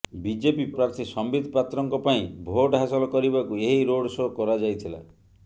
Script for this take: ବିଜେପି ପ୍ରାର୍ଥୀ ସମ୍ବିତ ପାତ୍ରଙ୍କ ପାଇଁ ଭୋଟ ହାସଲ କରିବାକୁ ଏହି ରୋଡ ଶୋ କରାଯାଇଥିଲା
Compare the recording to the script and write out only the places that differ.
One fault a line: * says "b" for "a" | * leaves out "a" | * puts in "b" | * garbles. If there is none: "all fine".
all fine